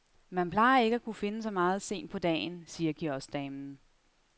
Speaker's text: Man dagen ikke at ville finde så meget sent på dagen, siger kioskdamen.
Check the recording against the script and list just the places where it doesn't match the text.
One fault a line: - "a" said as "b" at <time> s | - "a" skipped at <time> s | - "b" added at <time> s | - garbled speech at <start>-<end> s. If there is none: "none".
- "dagen" said as "plejer" at 0.5 s
- "ville" said as "kunne" at 1.0 s